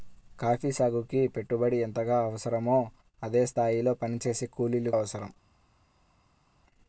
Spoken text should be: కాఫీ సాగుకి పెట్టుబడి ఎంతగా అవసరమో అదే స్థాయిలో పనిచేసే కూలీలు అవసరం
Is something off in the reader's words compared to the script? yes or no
no